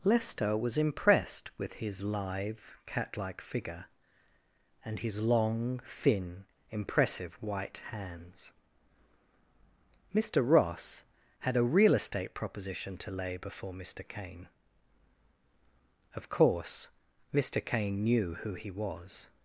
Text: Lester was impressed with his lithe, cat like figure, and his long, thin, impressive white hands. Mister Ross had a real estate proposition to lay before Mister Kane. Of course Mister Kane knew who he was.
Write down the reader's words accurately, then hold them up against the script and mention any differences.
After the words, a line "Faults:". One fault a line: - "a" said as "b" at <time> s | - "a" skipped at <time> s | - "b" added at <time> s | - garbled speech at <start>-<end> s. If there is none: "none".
Lester was impressed with his lithe, cat like figure, and his long, thin, impressive white hands. Mister Ross had a real estate proposition to lay before Mister Kane. Of course Mister Kane knew who he was.
Faults:
none